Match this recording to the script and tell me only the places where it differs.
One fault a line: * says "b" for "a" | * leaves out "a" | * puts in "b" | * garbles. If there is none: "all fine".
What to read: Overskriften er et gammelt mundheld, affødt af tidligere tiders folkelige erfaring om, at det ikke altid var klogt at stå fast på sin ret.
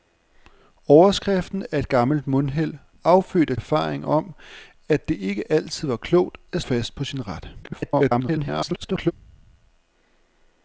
* leaves out "tidligere tiders folkelige"
* leaves out "stå"
* garbles